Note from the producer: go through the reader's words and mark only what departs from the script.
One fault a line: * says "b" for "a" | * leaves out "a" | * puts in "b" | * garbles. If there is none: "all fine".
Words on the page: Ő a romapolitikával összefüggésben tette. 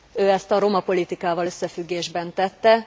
* puts in "ezt"